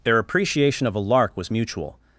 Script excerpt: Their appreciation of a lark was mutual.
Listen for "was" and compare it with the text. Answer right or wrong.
right